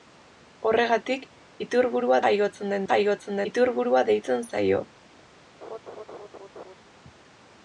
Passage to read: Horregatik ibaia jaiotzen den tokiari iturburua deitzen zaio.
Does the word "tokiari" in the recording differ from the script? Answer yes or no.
yes